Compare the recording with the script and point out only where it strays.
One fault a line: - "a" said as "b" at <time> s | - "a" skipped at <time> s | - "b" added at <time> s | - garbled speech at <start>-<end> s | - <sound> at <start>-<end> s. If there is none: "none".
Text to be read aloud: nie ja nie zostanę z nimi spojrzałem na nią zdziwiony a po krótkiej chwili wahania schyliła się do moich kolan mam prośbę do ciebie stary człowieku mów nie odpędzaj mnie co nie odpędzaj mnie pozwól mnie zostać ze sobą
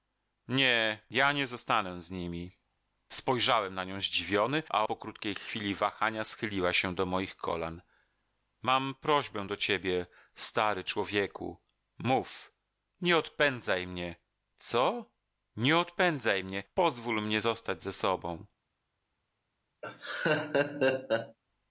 - laugh at 19.8-21.4 s